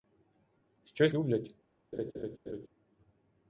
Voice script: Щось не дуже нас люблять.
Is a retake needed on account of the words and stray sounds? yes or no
yes